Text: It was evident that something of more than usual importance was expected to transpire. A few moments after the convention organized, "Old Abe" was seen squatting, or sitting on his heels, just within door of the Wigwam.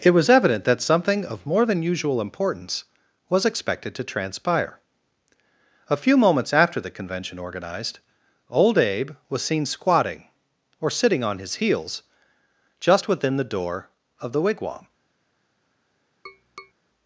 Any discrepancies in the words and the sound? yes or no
yes